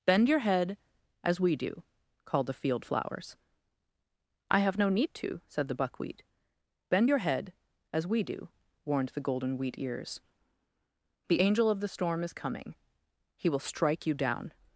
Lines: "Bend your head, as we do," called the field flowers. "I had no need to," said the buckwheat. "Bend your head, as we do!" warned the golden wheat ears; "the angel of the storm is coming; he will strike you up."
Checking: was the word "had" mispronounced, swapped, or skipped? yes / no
yes